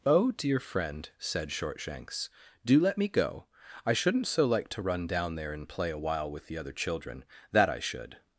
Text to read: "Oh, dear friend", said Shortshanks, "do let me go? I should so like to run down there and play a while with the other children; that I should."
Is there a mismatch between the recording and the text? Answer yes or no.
yes